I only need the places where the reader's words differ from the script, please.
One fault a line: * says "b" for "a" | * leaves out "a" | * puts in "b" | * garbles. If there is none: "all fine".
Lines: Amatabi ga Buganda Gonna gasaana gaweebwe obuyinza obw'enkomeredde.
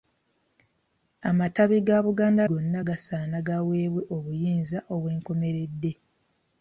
all fine